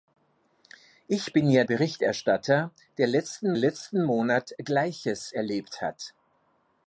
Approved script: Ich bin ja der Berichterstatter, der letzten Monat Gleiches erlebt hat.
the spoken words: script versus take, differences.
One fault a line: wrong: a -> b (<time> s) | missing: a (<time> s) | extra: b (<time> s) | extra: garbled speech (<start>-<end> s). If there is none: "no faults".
missing: der (1.6 s)
extra: letzten (3.5 s)